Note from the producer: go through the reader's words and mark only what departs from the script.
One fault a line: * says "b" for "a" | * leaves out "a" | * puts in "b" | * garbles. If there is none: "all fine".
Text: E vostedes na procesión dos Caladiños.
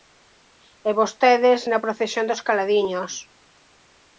all fine